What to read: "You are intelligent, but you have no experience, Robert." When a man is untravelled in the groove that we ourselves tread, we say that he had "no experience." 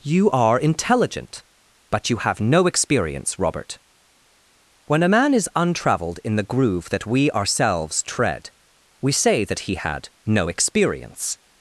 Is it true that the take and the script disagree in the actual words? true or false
false